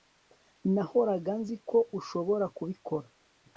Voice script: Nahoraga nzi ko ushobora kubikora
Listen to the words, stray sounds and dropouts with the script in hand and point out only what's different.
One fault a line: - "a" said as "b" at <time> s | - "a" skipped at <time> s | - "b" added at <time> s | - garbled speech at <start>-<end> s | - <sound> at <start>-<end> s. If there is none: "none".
none